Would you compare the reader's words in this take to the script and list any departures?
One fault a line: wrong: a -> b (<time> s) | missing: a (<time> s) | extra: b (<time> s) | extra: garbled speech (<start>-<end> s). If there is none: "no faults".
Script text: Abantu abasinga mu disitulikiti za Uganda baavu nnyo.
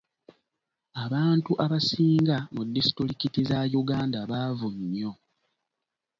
no faults